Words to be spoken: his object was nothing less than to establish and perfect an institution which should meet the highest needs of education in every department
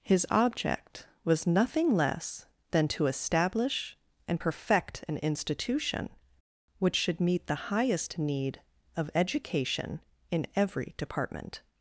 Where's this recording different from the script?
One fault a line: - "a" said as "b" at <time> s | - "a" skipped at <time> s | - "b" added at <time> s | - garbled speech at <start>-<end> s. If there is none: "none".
- "needs" said as "need" at 8.2 s